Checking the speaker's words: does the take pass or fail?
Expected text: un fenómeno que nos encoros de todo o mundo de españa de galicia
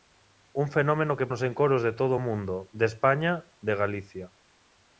pass